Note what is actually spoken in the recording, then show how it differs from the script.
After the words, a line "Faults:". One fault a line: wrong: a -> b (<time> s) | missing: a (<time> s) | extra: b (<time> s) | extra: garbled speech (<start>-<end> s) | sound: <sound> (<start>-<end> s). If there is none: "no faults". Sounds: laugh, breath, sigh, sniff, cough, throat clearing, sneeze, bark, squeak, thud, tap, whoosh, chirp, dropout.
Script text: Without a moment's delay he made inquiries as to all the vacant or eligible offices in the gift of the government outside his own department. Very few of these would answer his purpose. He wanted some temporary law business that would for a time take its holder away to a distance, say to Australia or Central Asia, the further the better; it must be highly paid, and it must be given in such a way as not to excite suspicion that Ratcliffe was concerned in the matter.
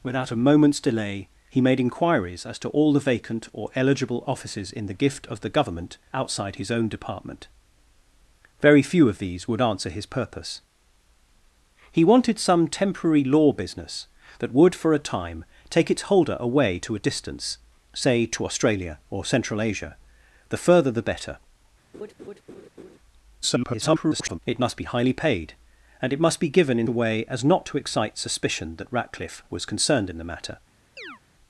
Without a moment's delay he made inquiries as to all the vacant or eligible offices in the gift of the government outside his own department. Very few of these would answer his purpose. He wanted some temporary law business that would for a time take its holder away to a distance, say to Australia or Central Asia, the further the better; [garbled] it must be highly paid, and it must be given in a way as not to excite suspicion that Ratcliffe was concerned in the matter.
Faults:
sound: laugh (21.9-23.0 s)
extra: garbled speech (23.4-24.4 s)
missing: such (26.9 s)
sound: chirp (31.0-31.2 s)